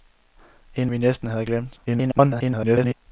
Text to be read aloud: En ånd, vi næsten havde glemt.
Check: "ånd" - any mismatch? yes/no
yes